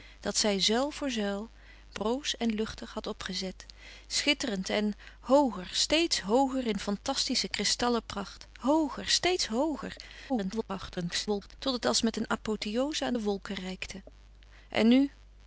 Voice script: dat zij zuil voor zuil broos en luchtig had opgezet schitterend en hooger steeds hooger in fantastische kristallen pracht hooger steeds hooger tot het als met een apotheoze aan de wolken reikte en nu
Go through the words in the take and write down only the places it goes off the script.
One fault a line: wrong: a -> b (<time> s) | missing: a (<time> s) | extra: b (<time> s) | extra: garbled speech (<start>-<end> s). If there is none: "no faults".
extra: garbled speech (10.3-11.5 s)